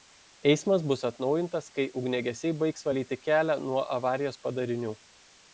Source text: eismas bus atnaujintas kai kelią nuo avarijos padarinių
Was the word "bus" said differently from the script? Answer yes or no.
no